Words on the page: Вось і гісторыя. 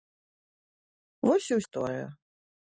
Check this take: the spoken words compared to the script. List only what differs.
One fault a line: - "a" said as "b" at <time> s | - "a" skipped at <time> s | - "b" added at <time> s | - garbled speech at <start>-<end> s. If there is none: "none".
none